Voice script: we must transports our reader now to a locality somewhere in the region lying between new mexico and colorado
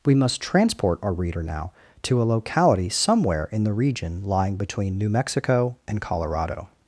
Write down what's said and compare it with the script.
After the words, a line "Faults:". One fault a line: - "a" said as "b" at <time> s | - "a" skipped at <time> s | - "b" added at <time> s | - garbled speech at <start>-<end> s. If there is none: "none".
we must transport our reader now to a locality somewhere in the region lying between new mexico and colorado
Faults:
- "transports" said as "transport" at 0.4 s